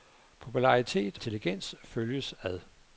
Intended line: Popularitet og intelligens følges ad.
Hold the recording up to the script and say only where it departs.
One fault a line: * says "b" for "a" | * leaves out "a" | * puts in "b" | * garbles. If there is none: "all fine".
* leaves out "og"